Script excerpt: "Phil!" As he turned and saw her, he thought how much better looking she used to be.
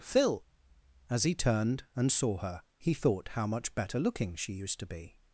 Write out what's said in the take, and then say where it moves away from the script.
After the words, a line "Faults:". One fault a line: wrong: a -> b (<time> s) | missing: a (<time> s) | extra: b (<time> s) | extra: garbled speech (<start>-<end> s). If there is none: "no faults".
"Phil!" As he turned and saw her, he thought how much better looking she used to be.
Faults:
no faults